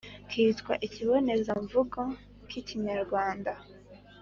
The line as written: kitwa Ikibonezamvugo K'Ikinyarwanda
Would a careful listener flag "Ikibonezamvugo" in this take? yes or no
no